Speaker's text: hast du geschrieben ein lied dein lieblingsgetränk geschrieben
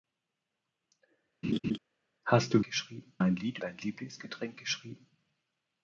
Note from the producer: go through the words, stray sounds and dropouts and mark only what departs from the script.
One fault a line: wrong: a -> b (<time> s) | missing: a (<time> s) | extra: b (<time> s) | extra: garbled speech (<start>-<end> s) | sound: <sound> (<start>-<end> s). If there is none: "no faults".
sound: laugh (1.4-1.8 s)